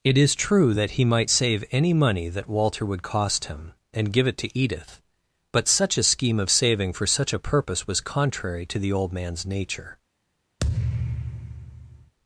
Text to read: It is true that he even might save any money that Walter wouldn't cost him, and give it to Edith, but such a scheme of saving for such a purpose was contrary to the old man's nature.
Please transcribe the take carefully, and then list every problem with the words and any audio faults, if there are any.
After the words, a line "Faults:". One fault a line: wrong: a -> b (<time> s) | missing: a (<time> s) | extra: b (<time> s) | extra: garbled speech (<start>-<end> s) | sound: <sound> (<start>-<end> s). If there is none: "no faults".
It is true that he might save any money that Walter would cost him, and give it to Edith, but such a scheme of saving for such a purpose was contrary to the old man's nature.
Faults:
missing: even (1.0 s)
wrong: wouldn't -> would (2.9 s)
sound: thud (10.6-12.1 s)